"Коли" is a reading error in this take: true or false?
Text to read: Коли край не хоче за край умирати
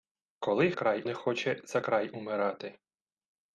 false